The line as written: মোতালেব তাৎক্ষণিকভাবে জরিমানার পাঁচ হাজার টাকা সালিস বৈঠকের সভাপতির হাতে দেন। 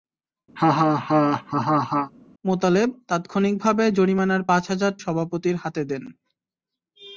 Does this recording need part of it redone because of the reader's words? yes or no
yes